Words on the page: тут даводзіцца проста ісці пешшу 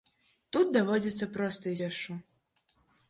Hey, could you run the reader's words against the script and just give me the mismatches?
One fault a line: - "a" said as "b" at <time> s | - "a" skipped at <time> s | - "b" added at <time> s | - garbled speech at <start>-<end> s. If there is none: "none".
- "ісці" skipped at 1.8 s